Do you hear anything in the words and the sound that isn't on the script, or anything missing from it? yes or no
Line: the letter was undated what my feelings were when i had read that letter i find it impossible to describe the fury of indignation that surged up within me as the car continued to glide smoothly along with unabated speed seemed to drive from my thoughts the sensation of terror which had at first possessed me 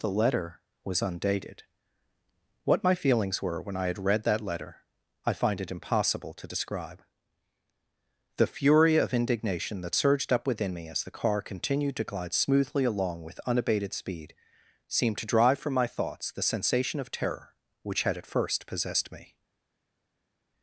no